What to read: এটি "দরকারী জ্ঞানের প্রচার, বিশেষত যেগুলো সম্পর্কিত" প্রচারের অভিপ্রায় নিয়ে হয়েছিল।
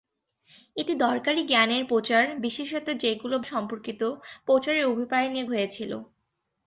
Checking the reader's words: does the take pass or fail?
pass